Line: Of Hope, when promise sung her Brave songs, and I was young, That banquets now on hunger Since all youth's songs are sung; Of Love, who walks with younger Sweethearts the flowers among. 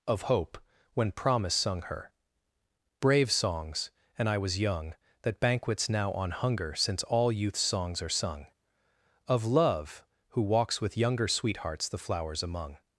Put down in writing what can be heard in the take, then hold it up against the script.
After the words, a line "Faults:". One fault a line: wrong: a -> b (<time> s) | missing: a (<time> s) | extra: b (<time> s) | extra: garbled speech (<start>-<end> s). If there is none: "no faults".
Of Hope, when promise sung her Brave songs, and I was young, That banquets now on hunger Since all youth's songs are sung; Of Love, who walks with younger Sweethearts the flowers among.
Faults:
no faults